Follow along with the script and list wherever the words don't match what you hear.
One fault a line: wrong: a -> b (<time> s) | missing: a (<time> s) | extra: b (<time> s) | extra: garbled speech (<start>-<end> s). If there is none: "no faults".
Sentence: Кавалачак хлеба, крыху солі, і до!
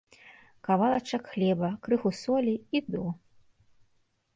no faults